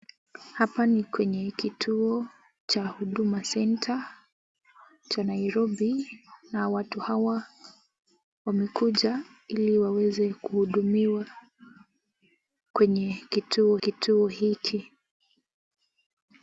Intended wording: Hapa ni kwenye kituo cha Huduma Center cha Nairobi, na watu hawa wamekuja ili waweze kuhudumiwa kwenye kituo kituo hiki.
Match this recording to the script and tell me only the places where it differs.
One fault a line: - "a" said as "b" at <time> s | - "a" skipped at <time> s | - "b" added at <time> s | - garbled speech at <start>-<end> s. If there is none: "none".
none